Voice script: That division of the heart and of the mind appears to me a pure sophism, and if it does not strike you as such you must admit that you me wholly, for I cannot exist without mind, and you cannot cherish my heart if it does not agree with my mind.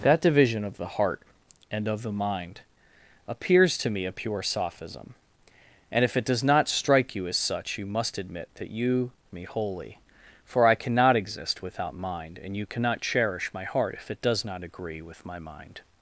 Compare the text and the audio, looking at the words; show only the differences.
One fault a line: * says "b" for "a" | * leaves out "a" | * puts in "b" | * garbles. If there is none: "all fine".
all fine